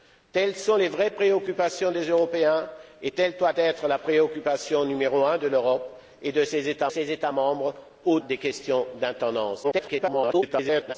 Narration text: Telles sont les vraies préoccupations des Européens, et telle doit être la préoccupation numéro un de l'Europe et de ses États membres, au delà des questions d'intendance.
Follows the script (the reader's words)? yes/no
no